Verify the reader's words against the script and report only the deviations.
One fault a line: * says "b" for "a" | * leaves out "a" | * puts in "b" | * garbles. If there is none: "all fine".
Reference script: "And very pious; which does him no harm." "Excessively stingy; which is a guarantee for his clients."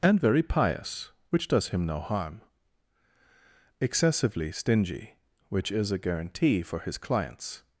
all fine